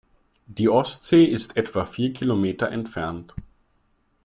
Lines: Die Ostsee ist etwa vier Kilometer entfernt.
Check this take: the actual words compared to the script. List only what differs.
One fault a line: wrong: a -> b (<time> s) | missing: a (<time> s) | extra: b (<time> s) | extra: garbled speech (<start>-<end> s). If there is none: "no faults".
no faults